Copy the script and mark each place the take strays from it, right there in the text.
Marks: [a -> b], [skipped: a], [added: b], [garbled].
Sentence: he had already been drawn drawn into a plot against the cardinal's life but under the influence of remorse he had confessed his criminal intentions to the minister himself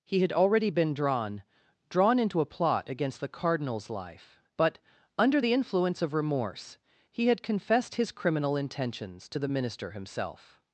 he had already been drawn drawn into a plot against the cardinal's life but under the influence of remorse he had confessed his criminal intentions to the minister himself